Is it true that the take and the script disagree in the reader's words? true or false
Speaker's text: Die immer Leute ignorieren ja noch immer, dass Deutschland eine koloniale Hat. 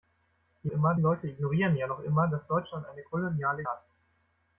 false